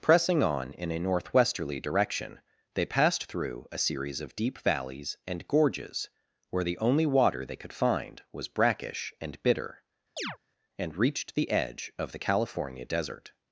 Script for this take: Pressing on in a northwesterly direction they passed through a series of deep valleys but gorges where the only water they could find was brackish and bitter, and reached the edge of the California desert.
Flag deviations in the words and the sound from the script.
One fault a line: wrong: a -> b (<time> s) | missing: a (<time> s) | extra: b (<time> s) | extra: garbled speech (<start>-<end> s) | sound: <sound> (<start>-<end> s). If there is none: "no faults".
wrong: but -> and (5.3 s)
sound: chirp (10.2-10.4 s)